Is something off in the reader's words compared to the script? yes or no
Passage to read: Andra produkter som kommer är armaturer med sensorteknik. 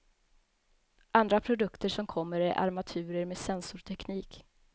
no